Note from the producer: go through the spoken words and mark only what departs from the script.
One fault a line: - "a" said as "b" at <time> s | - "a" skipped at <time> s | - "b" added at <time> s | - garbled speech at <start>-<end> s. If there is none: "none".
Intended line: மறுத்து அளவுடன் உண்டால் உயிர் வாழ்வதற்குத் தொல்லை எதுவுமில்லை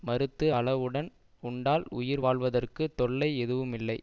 none